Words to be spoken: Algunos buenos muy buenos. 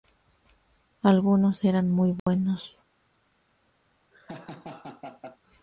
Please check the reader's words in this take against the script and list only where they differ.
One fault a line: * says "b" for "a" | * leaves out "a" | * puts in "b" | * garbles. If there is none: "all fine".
* says "eran" for "buenos"